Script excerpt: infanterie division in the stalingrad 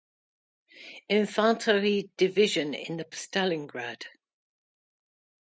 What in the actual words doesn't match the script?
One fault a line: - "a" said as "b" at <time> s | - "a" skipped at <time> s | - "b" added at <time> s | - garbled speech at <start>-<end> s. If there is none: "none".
none